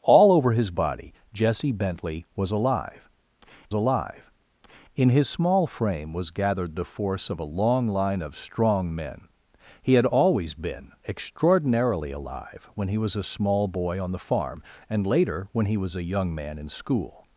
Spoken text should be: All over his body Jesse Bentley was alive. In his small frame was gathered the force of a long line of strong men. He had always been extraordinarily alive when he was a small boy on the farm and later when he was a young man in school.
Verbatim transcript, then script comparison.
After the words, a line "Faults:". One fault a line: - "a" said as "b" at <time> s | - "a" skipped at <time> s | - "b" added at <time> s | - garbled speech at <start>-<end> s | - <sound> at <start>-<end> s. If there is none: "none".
All over his body Jesse Bentley was alive alive. In his small frame was gathered the force of a long line of strong men. He had always been extraordinarily alive when he was a small boy on the farm and later when he was a young man in school.
Faults:
- "alive" added at 3.7 s